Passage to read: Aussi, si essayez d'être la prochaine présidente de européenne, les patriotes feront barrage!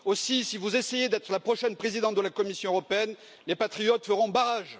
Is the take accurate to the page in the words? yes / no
no